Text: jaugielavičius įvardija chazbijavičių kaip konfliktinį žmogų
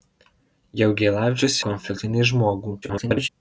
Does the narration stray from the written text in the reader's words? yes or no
yes